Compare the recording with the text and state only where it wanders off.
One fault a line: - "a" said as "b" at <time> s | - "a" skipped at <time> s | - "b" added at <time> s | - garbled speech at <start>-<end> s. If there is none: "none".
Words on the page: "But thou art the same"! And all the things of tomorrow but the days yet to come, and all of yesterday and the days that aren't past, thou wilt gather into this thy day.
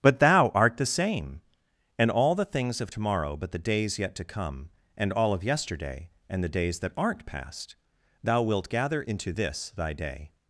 none